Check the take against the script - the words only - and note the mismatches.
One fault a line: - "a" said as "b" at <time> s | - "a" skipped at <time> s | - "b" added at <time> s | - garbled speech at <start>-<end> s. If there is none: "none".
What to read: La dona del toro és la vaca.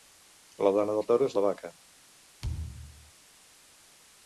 none